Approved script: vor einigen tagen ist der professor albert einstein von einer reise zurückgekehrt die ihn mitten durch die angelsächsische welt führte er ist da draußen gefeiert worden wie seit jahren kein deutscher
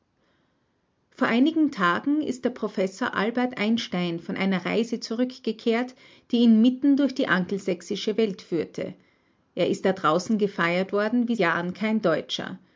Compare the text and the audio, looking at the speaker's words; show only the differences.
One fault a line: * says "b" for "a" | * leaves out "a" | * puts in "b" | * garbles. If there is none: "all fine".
* leaves out "seit"